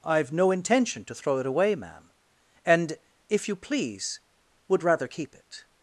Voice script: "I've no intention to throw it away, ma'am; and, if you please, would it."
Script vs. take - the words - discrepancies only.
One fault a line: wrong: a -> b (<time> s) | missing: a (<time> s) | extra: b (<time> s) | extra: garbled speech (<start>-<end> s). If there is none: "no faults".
extra: rather keep (4.8 s)